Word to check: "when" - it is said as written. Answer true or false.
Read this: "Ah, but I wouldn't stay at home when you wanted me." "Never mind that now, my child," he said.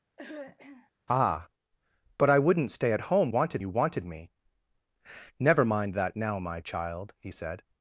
false